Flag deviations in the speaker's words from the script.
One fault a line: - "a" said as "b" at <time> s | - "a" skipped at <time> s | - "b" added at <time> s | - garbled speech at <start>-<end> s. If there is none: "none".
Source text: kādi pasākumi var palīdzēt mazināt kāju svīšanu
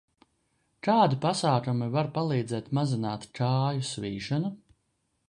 none